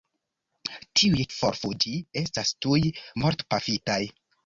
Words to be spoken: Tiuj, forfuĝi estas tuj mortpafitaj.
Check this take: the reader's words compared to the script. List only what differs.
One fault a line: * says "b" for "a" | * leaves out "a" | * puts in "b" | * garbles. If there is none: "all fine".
all fine